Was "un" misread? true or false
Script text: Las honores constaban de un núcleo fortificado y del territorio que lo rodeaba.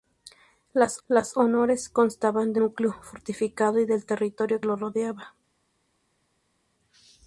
true